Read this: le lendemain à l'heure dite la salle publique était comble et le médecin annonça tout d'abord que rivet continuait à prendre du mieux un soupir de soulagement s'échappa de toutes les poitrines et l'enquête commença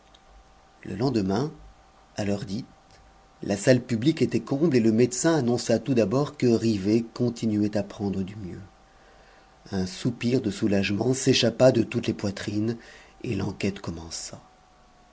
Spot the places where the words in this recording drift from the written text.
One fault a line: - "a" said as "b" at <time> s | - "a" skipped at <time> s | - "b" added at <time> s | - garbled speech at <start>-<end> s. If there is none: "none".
none